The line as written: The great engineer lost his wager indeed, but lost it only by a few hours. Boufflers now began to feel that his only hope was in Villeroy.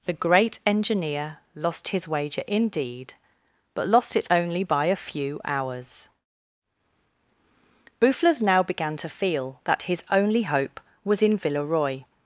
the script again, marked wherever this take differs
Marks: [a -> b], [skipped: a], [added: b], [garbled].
The great engineer lost his wager indeed, but lost it only by a few hours. Boufflers now began to feel that his only hope was in Villeroy.